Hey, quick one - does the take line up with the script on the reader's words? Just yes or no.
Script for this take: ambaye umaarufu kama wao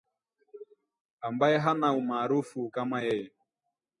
no